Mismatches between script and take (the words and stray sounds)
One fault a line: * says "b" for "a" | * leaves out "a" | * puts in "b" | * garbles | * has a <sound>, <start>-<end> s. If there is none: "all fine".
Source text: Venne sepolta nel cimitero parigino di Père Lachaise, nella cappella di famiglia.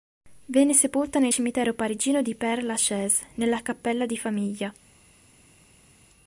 all fine